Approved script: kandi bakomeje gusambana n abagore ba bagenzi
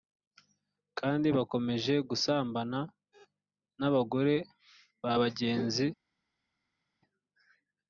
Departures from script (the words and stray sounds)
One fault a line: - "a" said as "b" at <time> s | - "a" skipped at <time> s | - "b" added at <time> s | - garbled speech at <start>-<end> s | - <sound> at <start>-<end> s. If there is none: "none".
none